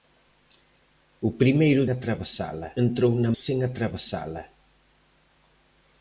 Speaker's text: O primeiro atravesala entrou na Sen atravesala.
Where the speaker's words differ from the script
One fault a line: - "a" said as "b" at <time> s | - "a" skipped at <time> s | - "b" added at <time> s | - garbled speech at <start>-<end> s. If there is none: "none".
none